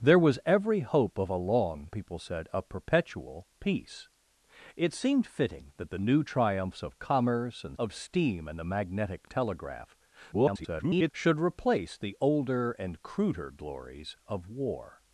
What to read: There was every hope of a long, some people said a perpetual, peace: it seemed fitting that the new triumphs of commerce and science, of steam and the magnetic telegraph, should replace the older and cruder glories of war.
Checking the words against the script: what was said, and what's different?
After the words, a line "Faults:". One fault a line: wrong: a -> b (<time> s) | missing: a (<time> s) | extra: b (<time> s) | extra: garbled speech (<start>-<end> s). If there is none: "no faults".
There was every hope of a long, people said a perpetual, peace: it seemed fitting that the new triumphs of commerce and of steam and the magnetic telegraph, [garbled] should replace the older and cruder glories of war.
Faults:
missing: some (1.9 s)
missing: science (7.8 s)
extra: garbled speech (10.3-11.1 s)